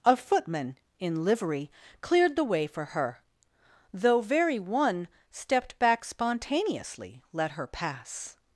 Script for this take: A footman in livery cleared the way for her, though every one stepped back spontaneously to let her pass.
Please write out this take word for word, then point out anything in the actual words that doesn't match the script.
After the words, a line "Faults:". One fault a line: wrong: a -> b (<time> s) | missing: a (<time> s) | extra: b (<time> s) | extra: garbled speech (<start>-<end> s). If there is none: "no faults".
A footman in livery cleared the way for her, though very one stepped back spontaneously let her pass.
Faults:
wrong: every -> very (4.2 s)
missing: to (7.2 s)